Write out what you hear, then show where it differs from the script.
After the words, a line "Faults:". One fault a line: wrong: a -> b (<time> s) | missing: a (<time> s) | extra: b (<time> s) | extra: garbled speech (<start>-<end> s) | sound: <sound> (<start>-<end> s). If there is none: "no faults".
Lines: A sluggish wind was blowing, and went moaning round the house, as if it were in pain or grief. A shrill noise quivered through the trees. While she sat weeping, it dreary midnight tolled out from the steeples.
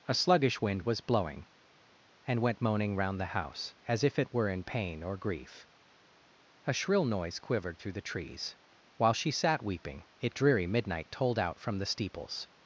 A sluggish wind was blowing, and went moaning round the house, as if it were in pain or grief. A shrill noise quivered through the trees. While she sat weeping, it dreary midnight tolled out from the steeples.
Faults:
no faults